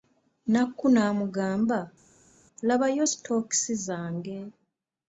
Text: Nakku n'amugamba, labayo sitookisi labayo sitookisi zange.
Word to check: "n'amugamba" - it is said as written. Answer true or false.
true